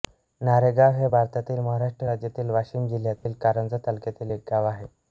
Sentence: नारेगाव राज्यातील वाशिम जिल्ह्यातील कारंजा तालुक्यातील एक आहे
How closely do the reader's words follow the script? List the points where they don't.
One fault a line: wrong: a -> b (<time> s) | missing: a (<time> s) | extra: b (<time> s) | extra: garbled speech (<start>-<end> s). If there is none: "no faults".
extra: हे भारतातील महाराष्ट्र (0.9 s)
extra: गाव (4.5 s)